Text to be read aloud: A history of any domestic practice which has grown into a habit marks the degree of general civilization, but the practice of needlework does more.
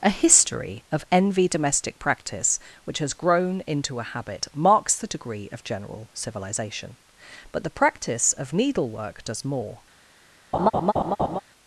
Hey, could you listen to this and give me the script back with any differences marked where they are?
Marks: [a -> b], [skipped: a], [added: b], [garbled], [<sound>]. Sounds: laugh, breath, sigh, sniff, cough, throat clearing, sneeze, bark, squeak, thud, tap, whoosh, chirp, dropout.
A history of [any -> envy] domestic practice which has grown into a habit marks the degree of general civilization, but the practice of needlework does more. [laugh]